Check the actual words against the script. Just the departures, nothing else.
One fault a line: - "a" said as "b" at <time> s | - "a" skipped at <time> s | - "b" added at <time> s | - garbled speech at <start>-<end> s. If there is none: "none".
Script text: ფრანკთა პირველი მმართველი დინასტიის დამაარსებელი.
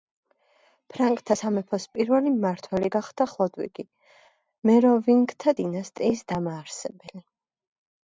- "სამეფოს" added at 1.4 s
- "გახდა ხლოდვიგი მეროვინგთა" added at 2.9 s